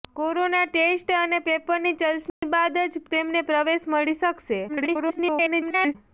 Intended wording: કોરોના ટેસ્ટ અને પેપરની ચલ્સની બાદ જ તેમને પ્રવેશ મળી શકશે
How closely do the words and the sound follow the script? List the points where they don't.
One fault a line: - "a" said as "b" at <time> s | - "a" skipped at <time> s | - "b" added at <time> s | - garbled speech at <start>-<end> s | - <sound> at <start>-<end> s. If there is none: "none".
- dropout at 2.3-2.4 s
- garbled speech at 4.7-6.0 s